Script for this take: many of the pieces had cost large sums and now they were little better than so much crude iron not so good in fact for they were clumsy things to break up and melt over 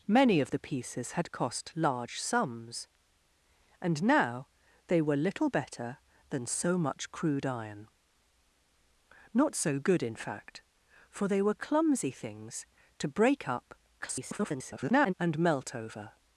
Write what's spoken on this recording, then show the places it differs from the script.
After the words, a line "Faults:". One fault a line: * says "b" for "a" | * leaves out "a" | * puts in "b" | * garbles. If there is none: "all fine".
many of the pieces had cost large sums and now they were little better than so much crude iron not so good in fact for they were clumsy things to break up [garbled] and melt over
Faults:
* garbles